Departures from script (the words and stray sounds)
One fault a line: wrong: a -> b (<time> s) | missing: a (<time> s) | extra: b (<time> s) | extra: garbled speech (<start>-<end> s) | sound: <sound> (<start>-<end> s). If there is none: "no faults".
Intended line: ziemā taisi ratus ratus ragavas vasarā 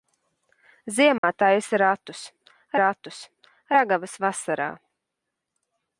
sound: dropout (1.2-1.2 s)